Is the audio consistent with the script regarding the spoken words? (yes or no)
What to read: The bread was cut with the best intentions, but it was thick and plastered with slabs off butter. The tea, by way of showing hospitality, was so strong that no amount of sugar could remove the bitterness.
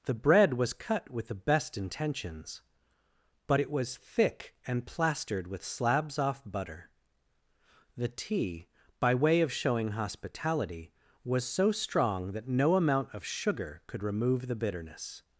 yes